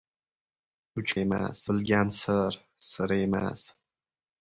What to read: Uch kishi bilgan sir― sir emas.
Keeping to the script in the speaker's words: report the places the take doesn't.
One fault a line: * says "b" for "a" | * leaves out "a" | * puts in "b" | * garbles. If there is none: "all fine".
* says "emas" for "kishi"